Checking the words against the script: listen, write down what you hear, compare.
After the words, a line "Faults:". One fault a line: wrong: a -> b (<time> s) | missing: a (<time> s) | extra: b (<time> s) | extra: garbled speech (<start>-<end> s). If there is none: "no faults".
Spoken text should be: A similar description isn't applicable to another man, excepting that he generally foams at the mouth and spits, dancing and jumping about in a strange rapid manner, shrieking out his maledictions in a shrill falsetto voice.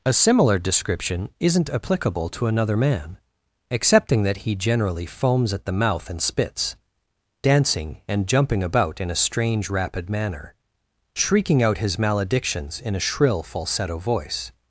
A similar description isn't applicable to another man, excepting that he generally foams at the mouth and spits, dancing and jumping about in a strange rapid manner, shrieking out his maledictions in a shrill falsetto voice.
Faults:
no faults